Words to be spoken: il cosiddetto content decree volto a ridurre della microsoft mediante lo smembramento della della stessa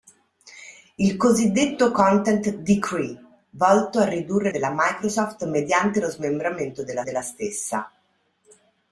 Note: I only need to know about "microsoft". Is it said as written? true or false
true